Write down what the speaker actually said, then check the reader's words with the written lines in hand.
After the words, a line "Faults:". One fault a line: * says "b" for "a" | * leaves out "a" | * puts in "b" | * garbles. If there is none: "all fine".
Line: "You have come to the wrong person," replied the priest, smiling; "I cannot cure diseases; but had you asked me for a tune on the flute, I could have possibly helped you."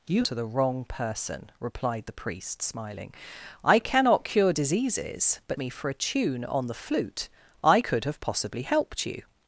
"You to the wrong person," replied the priest, smiling; "I cannot cure diseases; but me for a tune on the flute, I could have possibly helped you."
Faults:
* leaves out "have come"
* leaves out "had you asked"